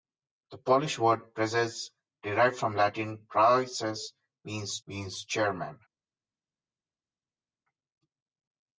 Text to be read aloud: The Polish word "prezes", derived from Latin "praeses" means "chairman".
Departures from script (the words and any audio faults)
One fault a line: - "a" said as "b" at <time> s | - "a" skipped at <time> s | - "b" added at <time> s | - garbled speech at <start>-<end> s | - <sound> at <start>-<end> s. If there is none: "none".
- "means" added at 4.9 s